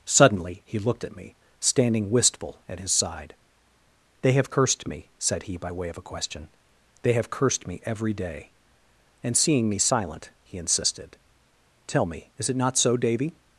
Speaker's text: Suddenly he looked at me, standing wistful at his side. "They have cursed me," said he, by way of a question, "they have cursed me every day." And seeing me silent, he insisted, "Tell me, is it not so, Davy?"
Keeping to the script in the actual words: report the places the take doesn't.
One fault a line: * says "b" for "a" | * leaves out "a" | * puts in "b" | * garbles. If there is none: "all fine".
all fine